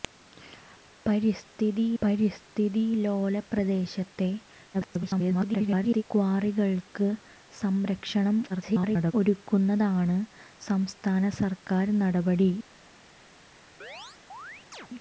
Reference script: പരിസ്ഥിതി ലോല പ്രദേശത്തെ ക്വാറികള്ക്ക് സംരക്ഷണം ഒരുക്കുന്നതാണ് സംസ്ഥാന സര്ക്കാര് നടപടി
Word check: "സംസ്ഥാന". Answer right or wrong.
right